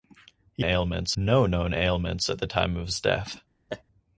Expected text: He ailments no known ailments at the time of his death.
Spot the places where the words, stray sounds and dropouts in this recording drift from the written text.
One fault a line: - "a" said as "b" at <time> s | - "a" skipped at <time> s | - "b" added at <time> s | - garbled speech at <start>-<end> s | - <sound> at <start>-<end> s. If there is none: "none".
- laugh at 3.7-3.8 s